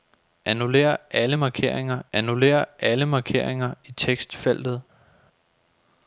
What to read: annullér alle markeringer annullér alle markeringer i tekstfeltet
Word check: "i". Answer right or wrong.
right